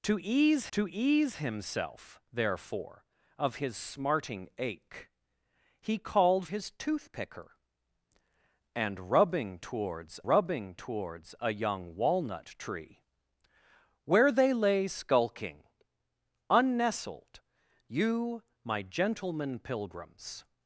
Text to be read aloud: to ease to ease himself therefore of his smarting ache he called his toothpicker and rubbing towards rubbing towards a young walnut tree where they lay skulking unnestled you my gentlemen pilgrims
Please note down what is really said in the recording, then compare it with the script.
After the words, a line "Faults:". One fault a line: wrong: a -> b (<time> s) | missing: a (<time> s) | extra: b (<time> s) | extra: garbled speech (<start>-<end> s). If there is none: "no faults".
to ease to ease himself therefore of his smarting ache he called his toothpicker and rubbing towards rubbing towards a young walnut tree where they lay skulking unnestled you my gentlemen pilgrims
Faults:
no faults